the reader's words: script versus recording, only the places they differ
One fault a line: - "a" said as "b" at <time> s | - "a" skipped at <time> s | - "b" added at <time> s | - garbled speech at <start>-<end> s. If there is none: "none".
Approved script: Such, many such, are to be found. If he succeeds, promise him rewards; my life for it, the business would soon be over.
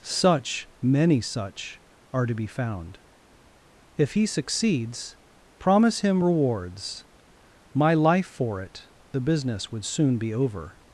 none